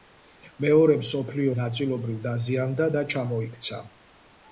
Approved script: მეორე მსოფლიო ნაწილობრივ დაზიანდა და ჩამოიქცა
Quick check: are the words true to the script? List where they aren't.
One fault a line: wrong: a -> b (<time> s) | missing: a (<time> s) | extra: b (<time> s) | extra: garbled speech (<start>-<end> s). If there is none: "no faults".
no faults